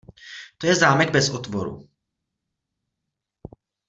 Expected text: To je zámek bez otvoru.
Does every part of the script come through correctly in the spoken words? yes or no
yes